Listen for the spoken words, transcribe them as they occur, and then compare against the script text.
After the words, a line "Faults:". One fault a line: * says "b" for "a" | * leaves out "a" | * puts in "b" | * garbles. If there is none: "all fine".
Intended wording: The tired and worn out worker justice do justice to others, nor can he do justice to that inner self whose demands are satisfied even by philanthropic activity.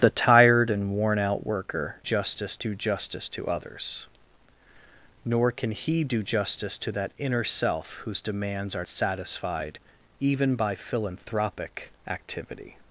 The tired and worn out worker justice do justice to others, nor can he do justice to that inner self whose demands are satisfied even by philanthropic activity.
Faults:
all fine